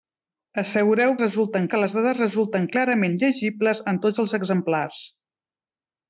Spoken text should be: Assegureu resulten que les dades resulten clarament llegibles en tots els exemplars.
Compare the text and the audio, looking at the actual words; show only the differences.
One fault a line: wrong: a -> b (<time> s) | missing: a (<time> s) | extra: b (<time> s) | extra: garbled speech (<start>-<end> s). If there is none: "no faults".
no faults